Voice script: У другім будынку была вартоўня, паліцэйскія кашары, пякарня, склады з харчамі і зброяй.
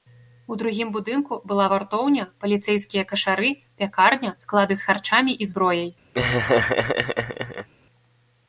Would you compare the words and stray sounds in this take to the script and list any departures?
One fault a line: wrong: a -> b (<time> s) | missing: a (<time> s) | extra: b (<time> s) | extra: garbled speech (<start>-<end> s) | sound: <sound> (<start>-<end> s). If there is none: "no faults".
sound: laugh (6.1-7.7 s)